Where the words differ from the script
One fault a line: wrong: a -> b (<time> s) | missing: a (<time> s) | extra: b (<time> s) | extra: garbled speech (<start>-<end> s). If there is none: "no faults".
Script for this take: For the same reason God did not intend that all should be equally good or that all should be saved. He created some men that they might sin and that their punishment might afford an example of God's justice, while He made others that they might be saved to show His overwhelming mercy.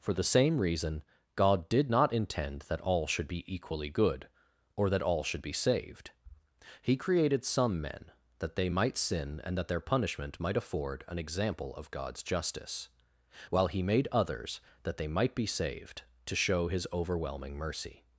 no faults